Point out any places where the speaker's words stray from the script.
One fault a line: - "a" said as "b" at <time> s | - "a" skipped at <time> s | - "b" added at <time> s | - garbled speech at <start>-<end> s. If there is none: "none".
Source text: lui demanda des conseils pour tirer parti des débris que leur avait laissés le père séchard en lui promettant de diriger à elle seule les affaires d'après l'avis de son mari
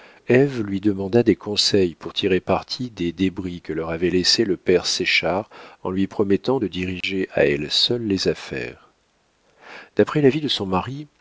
none